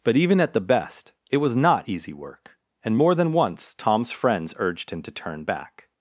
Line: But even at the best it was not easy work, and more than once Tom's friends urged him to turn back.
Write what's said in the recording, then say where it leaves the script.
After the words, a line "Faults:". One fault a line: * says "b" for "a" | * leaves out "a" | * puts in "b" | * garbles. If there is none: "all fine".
But even at the best it was not easy work, and more than once Tom's friends urged him to turn back.
Faults:
all fine